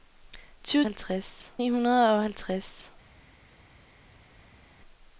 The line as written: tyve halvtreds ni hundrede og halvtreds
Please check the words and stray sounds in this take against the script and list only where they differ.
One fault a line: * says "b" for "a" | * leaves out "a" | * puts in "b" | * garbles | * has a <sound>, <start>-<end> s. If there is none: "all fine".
all fine